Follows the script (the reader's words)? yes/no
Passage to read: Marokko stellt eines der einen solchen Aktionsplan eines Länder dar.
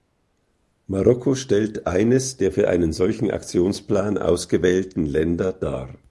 no